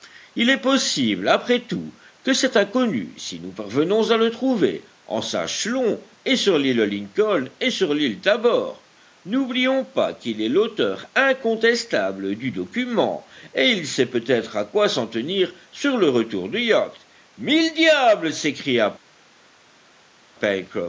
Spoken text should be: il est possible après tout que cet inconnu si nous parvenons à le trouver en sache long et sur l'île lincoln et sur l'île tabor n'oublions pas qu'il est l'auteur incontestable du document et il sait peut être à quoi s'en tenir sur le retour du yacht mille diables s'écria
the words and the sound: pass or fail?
pass